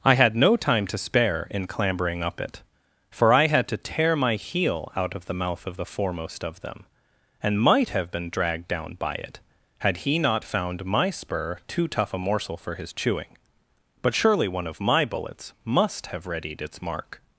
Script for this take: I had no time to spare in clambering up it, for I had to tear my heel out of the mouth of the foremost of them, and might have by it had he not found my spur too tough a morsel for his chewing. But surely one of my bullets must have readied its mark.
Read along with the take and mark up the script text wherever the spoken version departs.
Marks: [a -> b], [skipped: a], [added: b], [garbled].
I had no time to spare in clambering up it, for I had to tear my heel out of the mouth of the foremost of them, and might have [added: been dragged down] by it had he not found my spur too tough a morsel for his chewing. But surely one of my bullets must have readied its mark.